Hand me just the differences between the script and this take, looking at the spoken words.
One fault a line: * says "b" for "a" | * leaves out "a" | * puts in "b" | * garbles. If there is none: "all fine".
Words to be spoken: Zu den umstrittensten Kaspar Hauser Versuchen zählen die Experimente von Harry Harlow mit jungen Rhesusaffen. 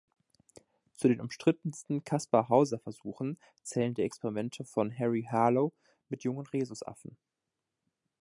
all fine